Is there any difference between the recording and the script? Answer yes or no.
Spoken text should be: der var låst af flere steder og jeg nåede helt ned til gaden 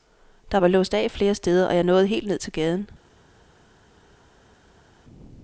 no